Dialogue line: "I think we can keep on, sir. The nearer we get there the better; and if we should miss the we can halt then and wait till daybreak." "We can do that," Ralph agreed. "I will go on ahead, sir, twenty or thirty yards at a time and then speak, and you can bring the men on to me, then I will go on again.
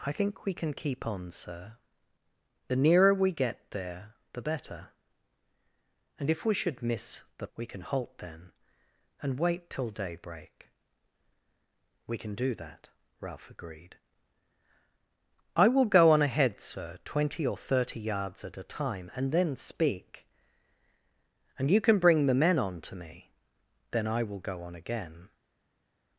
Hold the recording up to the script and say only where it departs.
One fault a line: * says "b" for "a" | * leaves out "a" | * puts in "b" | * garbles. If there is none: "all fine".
all fine